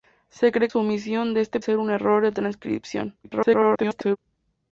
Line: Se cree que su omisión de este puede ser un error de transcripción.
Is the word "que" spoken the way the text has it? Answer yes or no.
no